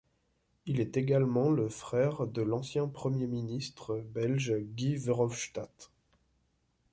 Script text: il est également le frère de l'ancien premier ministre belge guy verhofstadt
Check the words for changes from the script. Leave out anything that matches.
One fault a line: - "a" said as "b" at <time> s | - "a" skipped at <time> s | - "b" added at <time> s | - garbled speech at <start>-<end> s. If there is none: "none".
none